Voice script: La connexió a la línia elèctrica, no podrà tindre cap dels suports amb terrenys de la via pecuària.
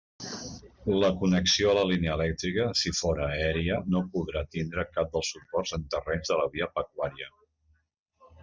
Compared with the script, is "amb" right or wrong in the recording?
wrong